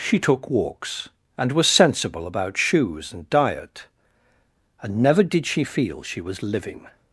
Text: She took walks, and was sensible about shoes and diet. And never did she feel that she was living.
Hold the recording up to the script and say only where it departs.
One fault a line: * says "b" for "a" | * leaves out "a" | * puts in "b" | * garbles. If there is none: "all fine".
* leaves out "that"